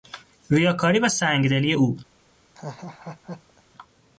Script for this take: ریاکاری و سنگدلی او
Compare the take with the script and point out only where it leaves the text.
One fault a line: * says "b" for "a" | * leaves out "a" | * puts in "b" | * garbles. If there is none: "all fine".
all fine